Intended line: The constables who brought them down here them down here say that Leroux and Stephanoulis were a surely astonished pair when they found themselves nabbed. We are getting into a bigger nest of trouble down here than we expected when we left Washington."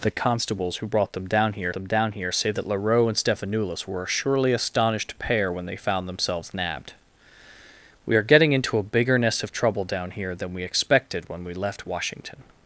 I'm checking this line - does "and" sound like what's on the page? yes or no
yes